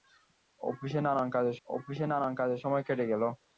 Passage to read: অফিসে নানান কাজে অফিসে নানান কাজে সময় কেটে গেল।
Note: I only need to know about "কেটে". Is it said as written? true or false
true